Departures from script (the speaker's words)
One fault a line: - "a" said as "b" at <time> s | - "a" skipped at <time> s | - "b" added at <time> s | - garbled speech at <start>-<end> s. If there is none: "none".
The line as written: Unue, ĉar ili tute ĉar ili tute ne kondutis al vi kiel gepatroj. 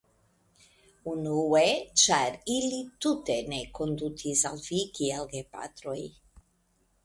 - "ĉar ili tute" skipped at 3.4 s